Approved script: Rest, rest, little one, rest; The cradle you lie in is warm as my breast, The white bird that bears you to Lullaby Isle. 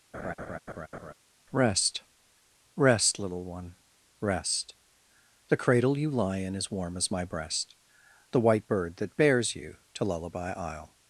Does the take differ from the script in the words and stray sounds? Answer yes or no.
yes